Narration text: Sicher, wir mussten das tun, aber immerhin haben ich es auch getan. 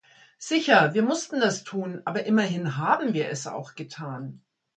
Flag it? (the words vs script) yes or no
yes